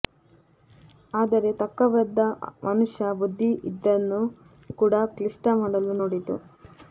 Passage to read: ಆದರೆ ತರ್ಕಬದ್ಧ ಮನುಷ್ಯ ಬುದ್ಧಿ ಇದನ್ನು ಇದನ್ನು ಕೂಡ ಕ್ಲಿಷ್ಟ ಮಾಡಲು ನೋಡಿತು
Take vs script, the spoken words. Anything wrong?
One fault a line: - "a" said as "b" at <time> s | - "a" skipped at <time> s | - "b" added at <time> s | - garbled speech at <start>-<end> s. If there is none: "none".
- "ಇದನ್ನು" skipped at 4.2 s